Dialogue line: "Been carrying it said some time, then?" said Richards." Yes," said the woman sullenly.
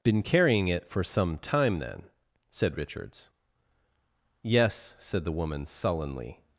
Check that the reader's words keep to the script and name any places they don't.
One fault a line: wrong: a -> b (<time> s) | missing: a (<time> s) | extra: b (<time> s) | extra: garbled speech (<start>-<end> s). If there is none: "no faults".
wrong: said -> for (0.9 s)